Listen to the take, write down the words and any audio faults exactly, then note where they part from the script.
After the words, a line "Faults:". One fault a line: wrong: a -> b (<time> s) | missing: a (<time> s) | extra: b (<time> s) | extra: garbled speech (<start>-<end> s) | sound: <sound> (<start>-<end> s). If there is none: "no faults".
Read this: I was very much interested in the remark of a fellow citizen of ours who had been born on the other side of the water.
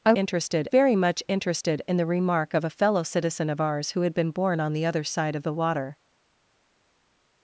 I interested very much interested in the remark of a fellow citizen of ours who had been born on the other side of the water.
Faults:
wrong: was -> interested (0.1 s)